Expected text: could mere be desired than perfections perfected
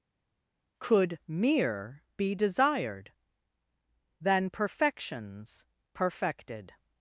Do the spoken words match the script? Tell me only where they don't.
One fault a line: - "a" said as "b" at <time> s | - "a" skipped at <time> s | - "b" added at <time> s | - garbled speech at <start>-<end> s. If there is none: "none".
none